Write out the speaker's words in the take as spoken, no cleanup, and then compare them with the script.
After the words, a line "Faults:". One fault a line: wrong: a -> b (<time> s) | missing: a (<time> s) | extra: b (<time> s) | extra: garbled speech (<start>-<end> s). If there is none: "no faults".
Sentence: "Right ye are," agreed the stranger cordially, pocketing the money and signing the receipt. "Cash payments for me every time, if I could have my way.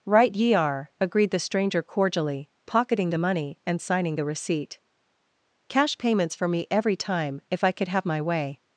"Right ye are," agreed the stranger cordially, pocketing the money and signing the receipt. "Cash payments for me every time, if I could have my way.
Faults:
no faults